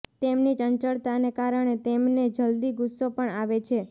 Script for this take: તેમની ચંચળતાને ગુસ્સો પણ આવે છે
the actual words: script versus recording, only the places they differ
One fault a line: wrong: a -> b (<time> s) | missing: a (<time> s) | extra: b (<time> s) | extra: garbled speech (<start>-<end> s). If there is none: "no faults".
extra: કારણે તેમને જલ્દી (1.3 s)